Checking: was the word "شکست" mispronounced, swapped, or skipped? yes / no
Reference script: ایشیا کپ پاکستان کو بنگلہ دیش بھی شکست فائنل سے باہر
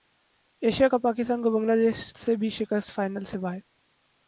no